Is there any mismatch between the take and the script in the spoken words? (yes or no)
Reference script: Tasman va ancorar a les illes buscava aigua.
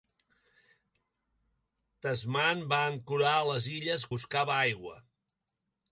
no